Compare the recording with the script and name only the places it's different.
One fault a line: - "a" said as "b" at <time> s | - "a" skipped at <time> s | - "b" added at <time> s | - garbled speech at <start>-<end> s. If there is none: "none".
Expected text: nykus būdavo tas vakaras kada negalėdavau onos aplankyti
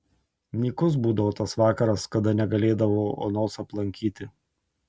none